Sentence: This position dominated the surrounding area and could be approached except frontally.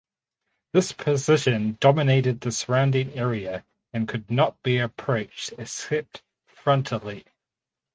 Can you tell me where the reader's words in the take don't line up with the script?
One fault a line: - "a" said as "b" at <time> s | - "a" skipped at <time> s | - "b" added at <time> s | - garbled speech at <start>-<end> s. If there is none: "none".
- "not" added at 4.3 s